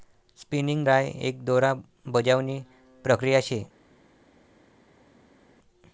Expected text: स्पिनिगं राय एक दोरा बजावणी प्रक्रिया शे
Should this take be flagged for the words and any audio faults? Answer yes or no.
no